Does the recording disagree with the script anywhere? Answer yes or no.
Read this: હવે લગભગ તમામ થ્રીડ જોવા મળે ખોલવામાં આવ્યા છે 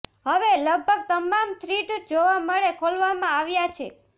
no